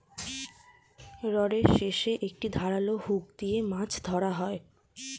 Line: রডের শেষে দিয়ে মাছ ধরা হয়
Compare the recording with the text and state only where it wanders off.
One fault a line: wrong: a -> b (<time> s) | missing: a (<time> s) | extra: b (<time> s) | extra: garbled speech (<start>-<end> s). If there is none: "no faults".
extra: একটি ধারালো হুক (2.3 s)